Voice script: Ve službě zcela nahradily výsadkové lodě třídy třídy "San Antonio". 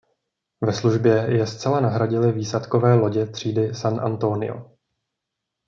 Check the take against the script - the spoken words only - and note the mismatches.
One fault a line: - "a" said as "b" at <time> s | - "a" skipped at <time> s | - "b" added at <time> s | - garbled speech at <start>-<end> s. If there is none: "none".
- "je" added at 1.3 s
- "třídy" skipped at 3.8 s